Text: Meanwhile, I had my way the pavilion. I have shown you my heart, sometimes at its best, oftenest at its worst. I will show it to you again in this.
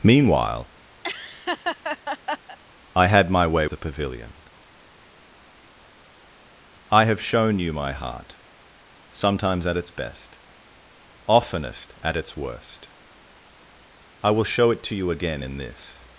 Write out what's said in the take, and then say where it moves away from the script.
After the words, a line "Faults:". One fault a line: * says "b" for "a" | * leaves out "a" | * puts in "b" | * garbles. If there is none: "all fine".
Meanwhile, I had my way the pavilion. I have shown you my heart, sometimes at its best, oftenest at its worst. I will show it to you again in this.
Faults:
all fine